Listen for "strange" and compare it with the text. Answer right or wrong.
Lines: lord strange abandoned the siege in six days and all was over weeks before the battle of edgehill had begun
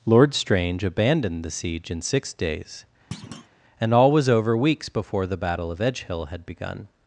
right